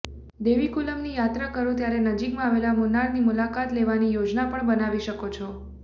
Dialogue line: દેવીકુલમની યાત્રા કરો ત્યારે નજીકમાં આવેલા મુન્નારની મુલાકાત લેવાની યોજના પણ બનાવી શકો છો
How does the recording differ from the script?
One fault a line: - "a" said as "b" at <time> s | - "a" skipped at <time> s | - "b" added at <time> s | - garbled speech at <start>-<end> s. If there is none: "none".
none